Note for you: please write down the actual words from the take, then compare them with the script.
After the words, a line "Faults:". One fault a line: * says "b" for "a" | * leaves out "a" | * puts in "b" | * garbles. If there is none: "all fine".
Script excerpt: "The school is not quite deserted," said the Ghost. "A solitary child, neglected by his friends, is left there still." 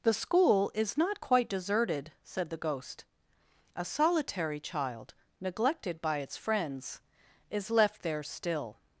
"The school is not quite deserted," said the Ghost. "A solitary child, neglected by its friends, is left there still."
Faults:
* says "its" for "his"